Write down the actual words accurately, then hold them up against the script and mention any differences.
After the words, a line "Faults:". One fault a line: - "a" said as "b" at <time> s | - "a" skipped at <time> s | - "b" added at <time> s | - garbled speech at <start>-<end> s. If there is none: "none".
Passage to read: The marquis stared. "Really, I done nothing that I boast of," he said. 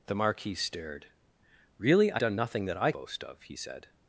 The marquis stared. "Really, I done nothing that I boast of," he said.
Faults:
none